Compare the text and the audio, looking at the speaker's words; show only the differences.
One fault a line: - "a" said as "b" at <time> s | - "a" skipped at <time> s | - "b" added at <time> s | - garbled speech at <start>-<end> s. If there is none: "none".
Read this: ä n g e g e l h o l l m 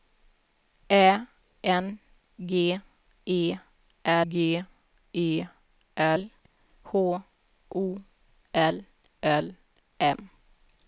none